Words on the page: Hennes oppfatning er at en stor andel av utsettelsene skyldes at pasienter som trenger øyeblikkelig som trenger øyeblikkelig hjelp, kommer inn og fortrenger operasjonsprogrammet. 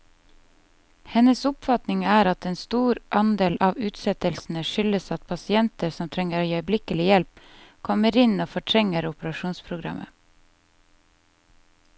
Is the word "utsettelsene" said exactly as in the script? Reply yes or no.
yes